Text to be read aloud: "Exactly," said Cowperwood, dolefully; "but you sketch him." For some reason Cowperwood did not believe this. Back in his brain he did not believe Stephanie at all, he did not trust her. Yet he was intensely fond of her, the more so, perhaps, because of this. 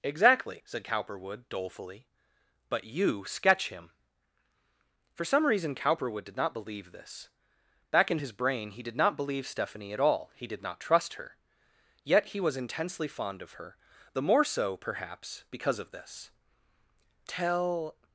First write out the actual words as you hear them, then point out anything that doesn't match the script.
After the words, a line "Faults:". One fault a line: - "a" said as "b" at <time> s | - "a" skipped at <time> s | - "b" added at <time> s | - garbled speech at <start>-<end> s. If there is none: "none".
"Exactly," said Cowperwood, dolefully; "but you sketch him." For some reason Cowperwood did not believe this. Back in his brain he did not believe Stephanie at all, he did not trust her. Yet he was intensely fond of her, the more so, perhaps, because of this. "Tell
Faults:
- "Tell" added at 17.3 s